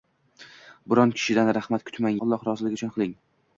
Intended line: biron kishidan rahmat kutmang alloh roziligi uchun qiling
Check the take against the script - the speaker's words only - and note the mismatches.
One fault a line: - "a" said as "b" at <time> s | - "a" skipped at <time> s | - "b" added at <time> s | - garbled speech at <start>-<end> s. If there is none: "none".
none